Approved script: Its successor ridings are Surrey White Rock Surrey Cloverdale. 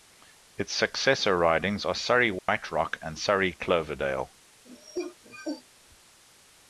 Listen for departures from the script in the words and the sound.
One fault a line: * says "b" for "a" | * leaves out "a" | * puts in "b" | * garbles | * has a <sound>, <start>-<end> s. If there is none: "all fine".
* has a dropout, 2.4-2.5 s
* puts in "and"
* has a cough, 4.6-5.6 s